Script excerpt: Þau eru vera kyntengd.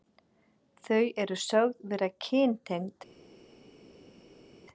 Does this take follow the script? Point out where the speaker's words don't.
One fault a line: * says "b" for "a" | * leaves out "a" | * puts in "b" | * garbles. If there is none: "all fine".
* puts in "sögð"